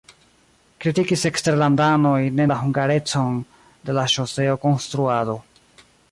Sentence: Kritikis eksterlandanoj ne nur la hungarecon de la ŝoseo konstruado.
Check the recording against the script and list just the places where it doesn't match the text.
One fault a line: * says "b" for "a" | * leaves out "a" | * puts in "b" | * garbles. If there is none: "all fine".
* leaves out "nur"